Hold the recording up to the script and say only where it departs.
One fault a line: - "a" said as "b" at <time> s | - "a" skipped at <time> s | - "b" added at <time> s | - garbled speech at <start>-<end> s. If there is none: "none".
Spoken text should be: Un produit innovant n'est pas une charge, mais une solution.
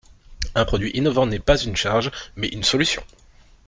none